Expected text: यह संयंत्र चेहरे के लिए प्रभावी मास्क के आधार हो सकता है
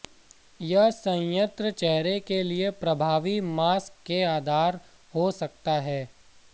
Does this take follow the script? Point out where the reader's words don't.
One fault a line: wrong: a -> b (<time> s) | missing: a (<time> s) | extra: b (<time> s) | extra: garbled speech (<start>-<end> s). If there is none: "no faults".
no faults